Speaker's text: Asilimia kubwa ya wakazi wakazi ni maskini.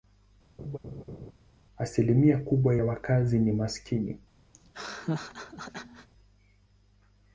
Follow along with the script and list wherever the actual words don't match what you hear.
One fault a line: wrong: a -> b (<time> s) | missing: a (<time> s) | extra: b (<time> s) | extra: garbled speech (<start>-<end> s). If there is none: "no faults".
missing: wakazi (3.4 s)